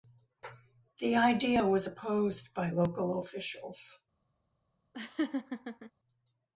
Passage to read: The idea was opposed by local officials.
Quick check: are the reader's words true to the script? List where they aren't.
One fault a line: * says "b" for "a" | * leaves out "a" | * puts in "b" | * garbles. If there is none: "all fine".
all fine